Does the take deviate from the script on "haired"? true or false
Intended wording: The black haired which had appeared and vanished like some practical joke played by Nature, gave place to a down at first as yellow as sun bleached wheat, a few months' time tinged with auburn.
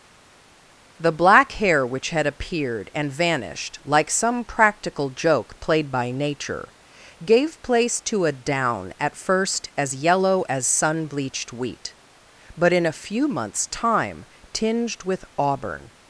true